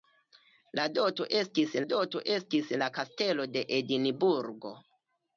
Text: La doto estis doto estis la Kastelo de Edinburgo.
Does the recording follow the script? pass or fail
pass